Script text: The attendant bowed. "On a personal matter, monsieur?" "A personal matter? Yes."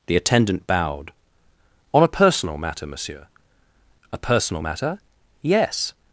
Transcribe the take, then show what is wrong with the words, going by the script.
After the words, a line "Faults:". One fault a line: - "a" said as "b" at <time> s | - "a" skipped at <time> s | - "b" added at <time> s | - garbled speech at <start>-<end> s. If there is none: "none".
The attendant bowed. "On a personal matter, monsieur?" "A personal matter? Yes."
Faults:
none